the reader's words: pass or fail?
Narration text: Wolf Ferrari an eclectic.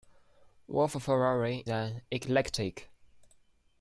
pass